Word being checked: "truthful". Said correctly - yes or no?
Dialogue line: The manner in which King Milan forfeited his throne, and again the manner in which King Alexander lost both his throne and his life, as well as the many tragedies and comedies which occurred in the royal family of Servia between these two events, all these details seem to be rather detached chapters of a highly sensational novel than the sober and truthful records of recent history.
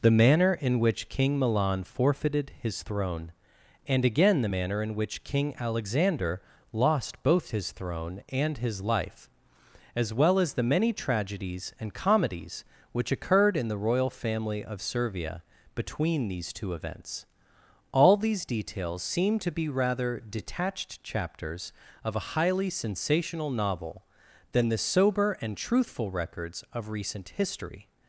yes